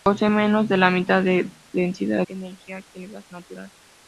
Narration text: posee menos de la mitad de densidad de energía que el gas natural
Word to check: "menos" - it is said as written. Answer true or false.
true